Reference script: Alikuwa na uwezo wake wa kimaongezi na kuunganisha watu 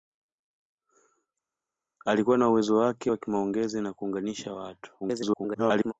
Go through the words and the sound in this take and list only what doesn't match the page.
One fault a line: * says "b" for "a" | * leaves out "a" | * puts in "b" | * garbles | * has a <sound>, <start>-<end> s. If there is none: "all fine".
* garbles